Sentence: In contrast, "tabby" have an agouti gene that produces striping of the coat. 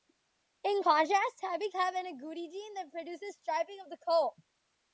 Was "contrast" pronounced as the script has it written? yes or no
yes